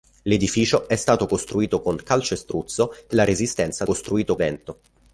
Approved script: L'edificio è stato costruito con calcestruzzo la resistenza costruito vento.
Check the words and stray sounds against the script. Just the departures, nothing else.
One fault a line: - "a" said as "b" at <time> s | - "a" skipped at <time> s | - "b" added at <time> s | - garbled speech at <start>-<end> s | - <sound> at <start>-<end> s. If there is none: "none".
none